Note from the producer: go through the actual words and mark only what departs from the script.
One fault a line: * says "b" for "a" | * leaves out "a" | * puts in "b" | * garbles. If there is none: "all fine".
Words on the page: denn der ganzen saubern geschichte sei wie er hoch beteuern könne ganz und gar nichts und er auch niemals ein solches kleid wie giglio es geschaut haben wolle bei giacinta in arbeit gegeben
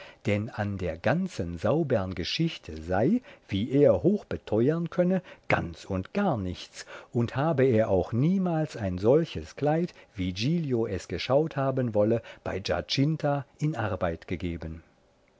* puts in "an"
* puts in "habe"